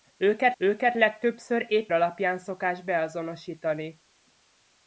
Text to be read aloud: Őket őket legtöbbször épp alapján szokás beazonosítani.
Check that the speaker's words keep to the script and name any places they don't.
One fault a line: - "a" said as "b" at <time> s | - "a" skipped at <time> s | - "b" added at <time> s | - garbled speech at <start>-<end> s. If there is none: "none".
none